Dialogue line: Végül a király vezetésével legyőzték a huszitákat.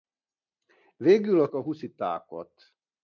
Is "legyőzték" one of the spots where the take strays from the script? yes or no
yes